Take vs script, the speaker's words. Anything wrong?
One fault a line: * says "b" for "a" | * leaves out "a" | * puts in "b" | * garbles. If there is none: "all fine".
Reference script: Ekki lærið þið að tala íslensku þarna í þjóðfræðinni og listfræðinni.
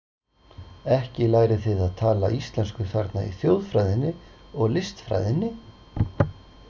all fine